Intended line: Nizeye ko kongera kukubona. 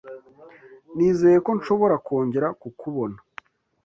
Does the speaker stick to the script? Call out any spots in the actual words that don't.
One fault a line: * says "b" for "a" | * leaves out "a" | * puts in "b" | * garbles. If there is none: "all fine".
* puts in "nshobora"